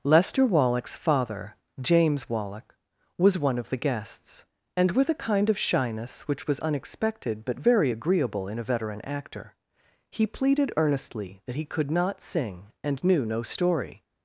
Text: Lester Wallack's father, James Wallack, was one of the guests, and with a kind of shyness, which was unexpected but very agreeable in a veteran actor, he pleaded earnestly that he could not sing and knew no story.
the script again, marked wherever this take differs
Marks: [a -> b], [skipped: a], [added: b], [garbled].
Lester Wallack's father, James Wallack, was one of the guests, and with a kind of shyness, which was unexpected but very agreeable in a veteran actor, he pleaded earnestly that he could not sing and knew no story.